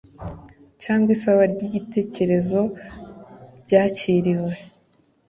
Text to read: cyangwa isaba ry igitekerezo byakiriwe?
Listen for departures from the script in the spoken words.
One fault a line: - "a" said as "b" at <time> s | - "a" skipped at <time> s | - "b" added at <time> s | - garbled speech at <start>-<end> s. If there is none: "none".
none